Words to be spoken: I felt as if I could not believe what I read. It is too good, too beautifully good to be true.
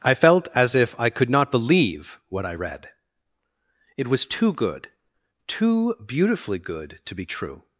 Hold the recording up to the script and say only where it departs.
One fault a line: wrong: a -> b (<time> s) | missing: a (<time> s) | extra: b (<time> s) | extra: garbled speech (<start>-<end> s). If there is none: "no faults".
wrong: is -> was (4.1 s)